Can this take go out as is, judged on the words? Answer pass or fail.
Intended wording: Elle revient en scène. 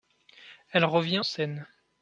fail